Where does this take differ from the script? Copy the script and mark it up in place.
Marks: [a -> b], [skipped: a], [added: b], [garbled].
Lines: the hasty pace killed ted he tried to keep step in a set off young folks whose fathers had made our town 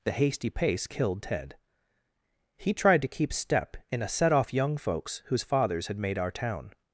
the hasty pace killed ted he tried to keep step in a set off young folks whose fathers had made our town